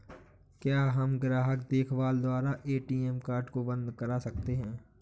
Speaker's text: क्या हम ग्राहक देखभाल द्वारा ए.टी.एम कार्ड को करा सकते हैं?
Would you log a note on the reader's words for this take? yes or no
yes